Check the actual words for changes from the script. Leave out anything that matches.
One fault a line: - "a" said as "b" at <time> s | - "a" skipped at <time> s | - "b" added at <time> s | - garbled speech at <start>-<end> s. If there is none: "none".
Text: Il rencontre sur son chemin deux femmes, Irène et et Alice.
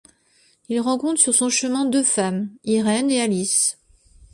- "et" skipped at 3.2 s